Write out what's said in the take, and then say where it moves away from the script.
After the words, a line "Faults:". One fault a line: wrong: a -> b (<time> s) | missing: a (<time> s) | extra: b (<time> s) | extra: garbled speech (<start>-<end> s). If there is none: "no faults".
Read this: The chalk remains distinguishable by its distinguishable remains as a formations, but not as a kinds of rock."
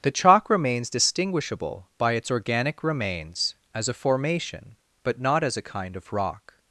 The chalk remains distinguishable by its organic remains as a formation, but not as a kind of rock."
Faults:
wrong: distinguishable -> organic (2.3 s)
wrong: formations -> formation (3.9 s)
wrong: kinds -> kind (5.7 s)